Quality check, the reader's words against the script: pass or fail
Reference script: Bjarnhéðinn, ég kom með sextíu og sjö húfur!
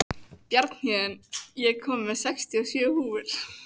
pass